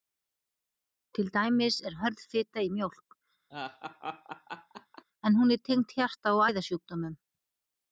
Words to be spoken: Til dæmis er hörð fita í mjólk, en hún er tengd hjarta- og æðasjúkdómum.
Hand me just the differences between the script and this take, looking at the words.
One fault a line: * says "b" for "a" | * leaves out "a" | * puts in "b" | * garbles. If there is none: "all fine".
all fine